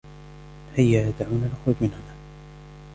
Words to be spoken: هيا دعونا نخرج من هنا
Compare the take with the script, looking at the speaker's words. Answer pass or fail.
pass